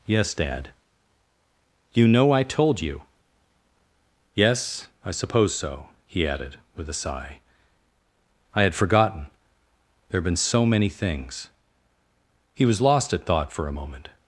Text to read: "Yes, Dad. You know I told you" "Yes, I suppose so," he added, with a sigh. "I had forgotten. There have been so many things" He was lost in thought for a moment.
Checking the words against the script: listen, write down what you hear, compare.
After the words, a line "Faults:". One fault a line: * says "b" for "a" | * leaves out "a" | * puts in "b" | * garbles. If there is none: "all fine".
"Yes, Dad. You know I told you" "Yes, I suppose so," he added, with a sigh. "I had forgotten. There have been so many things" He was lost at thought for a moment.
Faults:
* says "at" for "in"